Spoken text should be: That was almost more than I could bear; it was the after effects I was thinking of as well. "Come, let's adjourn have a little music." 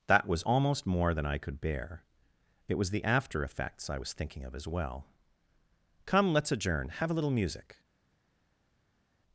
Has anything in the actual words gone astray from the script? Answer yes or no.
no